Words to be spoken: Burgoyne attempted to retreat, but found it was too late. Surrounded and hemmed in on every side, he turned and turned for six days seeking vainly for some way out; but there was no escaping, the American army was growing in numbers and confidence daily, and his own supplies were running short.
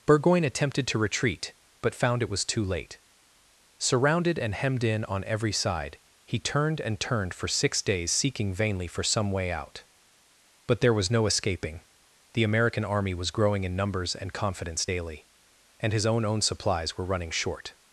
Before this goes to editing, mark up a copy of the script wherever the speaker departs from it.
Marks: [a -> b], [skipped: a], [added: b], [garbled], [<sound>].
Burgoyne attempted to retreat, but found it was too late. Surrounded and hemmed in on every side, he turned and turned for six days seeking vainly for some way out; but there was no escaping, the American army was growing in numbers and confidence daily, and his own [added: own] supplies were running short.